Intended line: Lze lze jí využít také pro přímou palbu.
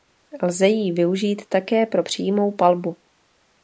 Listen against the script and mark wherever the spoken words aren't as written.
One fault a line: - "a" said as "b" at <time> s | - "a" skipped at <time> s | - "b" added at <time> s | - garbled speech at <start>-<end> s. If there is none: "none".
- "lze" skipped at 0.7 s